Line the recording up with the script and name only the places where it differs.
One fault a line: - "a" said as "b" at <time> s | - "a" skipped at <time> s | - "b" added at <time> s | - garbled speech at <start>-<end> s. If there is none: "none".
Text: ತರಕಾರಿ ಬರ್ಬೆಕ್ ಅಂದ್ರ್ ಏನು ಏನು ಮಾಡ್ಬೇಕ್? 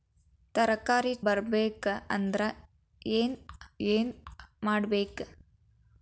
none